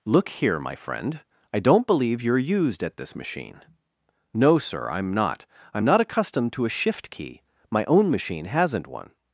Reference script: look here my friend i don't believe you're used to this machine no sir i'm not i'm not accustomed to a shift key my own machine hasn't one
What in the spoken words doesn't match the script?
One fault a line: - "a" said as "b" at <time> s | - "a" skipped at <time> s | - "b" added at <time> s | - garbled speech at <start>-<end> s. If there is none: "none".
- "to" said as "at" at 2.8 s